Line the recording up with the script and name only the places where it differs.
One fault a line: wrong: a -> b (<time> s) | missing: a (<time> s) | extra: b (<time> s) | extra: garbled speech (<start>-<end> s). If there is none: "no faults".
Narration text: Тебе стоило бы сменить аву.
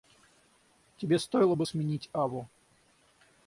no faults